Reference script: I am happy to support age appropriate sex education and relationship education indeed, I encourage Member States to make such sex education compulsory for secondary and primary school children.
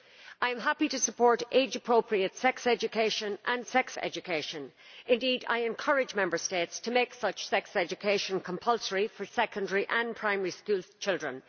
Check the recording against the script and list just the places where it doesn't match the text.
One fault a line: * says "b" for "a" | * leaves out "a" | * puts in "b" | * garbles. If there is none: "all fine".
* says "sex" for "relationship"